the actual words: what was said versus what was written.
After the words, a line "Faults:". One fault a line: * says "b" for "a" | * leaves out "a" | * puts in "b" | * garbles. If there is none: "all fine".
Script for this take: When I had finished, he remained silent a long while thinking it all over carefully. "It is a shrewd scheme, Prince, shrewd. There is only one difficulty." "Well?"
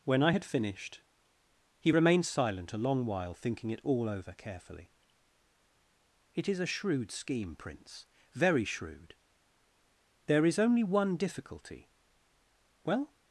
When I had finished, he remained silent a long while thinking it all over carefully. "It is a shrewd scheme, Prince, very shrewd. There is only one difficulty." "Well?"
Faults:
* puts in "very"